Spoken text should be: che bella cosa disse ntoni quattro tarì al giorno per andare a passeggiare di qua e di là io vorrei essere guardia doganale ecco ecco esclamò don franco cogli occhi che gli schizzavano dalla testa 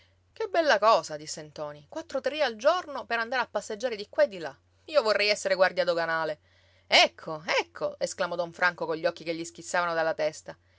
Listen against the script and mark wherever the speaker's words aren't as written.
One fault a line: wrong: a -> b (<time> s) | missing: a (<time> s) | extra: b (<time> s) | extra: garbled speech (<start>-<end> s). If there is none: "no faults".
no faults